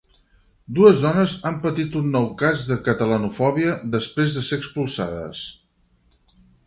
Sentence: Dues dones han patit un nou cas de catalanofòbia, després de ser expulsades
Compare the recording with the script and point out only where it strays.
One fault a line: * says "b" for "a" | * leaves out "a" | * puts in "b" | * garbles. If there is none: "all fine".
all fine